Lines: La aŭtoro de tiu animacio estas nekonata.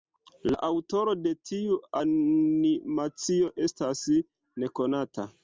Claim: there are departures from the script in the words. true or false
false